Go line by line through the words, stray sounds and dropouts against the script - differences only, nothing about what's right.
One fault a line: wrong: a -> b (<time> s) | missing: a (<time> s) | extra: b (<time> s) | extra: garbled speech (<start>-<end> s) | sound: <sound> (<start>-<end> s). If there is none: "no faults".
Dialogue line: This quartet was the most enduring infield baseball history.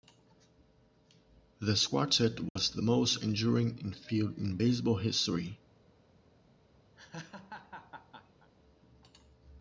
sound: dropout (2.5-2.6 s)
extra: in (4.4 s)
sound: laugh (7.0-8.5 s)